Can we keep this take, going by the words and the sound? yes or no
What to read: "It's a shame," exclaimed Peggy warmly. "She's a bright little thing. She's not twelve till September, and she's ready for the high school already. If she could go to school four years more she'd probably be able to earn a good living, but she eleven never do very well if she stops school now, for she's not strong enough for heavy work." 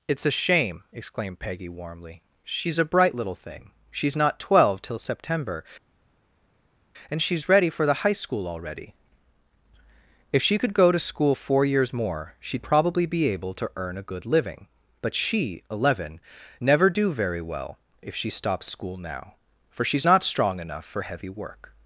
yes